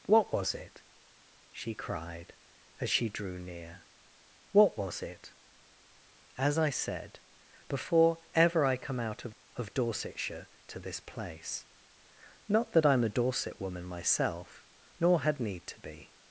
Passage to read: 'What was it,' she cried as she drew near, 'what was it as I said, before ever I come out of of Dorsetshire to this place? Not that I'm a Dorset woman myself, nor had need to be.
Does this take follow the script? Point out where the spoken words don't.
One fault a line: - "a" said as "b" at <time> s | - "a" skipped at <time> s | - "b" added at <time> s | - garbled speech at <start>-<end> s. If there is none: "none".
none